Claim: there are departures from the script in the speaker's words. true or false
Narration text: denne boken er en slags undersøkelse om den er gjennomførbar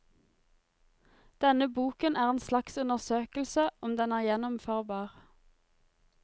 false